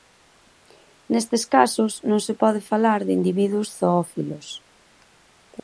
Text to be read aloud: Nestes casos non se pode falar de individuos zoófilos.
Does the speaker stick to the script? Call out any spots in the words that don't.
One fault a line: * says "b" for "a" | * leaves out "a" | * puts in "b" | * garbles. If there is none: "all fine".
all fine